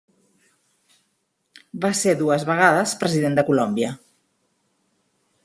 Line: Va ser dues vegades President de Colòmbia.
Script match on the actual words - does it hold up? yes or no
yes